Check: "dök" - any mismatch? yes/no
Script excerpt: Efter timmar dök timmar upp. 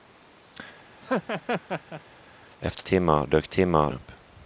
no